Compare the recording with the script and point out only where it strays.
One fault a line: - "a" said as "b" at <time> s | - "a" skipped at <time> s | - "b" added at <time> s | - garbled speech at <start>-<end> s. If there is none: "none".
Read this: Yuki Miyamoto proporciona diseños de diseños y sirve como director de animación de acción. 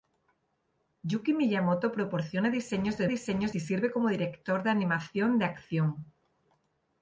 none